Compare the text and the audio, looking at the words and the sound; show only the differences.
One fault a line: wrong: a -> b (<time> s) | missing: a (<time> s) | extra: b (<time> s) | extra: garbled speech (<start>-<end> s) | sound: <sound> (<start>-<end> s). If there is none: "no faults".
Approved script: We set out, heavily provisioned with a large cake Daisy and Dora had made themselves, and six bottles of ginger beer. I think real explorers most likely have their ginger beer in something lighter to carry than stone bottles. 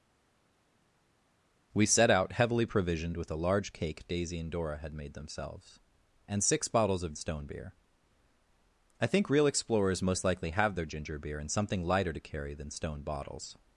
wrong: ginger -> stone (7.1 s)